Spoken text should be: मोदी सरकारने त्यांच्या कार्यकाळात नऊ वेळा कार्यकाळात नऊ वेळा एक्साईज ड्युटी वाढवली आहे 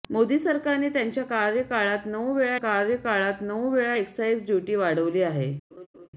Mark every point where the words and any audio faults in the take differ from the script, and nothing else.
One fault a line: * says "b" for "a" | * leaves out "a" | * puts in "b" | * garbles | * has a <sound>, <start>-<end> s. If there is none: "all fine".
* has a laugh, 5.7-6.1 s